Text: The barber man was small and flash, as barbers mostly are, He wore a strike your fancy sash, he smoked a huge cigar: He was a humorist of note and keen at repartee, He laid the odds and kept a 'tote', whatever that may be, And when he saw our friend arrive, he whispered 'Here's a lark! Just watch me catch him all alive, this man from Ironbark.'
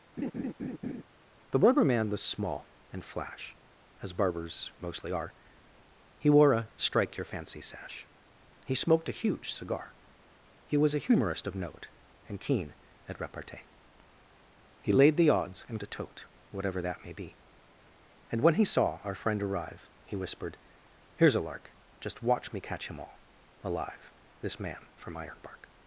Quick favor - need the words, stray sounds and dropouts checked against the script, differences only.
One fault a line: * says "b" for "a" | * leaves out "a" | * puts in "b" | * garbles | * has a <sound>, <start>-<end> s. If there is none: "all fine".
* has a laugh, 0.2-1.0 s
* leaves out "kept"